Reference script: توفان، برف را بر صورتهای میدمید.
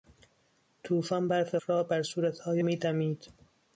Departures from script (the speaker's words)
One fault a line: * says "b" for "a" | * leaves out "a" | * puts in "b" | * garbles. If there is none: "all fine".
all fine